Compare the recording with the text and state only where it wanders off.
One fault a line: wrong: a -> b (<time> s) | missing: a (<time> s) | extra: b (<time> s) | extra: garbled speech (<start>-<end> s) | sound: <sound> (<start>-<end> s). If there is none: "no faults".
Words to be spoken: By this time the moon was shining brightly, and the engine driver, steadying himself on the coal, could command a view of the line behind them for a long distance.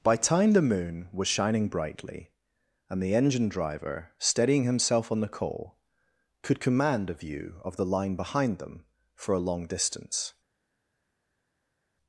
missing: this (0.1 s)